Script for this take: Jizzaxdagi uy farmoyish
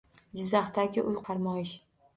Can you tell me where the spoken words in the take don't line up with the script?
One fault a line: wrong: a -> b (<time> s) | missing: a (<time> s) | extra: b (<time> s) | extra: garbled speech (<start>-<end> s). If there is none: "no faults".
no faults